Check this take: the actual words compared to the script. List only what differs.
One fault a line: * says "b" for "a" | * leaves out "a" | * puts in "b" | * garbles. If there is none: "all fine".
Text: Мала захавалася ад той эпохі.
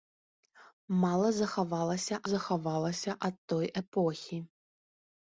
* puts in "захавалася"